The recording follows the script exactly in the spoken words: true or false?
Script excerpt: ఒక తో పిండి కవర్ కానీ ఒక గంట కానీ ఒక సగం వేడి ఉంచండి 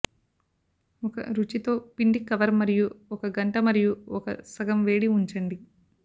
false